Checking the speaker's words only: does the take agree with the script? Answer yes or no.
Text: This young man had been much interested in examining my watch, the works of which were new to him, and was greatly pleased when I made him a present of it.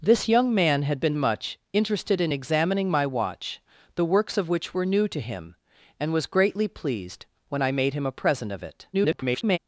no